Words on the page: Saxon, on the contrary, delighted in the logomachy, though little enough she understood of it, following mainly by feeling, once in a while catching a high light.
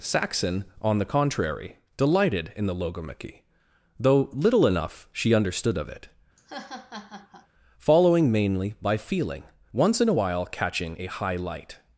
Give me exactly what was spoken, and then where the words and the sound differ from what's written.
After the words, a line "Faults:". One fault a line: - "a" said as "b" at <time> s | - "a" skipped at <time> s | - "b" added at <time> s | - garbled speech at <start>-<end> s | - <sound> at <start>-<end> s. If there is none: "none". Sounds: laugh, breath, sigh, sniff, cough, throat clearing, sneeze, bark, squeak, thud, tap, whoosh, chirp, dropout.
Saxon, on the contrary, delighted in the logomachy, though little enough she understood of it, following mainly by feeling, once in a while catching a high light.
Faults:
- laugh at 6.4-7.5 s